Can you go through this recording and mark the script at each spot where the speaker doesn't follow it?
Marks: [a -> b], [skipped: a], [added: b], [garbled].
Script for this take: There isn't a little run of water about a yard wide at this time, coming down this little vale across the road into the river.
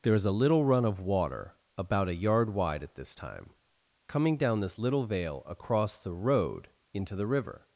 There [isn't -> is] a little run of water about a yard wide at this time, coming down this little vale across the road into the river.